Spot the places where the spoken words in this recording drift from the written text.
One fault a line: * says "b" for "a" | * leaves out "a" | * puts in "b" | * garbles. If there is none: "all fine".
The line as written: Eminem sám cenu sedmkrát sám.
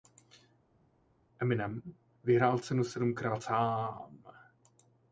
* says "vyhrál" for "sám"